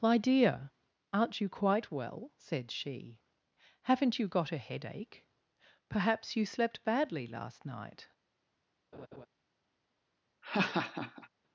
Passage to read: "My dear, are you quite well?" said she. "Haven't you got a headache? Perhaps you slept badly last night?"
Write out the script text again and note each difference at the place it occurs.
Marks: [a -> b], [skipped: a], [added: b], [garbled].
"My dear, [are -> aren't] you quite well?" said she. "Haven't you got a headache? Perhaps you slept badly last night?"